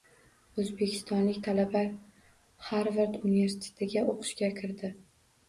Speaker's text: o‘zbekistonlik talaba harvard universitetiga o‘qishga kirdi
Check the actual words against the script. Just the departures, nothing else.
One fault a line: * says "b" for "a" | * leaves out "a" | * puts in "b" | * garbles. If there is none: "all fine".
all fine